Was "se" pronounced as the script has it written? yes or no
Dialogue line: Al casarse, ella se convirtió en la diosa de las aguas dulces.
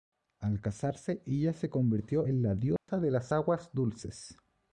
yes